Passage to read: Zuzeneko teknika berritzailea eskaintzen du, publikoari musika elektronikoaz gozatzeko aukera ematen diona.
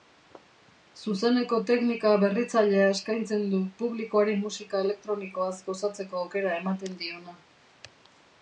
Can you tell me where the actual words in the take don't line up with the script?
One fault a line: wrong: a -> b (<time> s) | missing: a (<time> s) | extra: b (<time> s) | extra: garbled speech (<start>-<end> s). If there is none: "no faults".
no faults